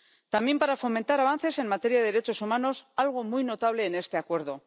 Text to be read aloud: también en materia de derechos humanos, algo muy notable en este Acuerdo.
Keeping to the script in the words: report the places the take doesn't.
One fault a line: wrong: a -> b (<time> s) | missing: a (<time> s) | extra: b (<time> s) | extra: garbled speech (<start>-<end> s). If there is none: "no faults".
extra: para fomentar avances (0.6 s)